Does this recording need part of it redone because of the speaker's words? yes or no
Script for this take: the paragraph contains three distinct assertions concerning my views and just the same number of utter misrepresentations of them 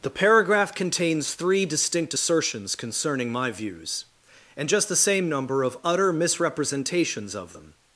no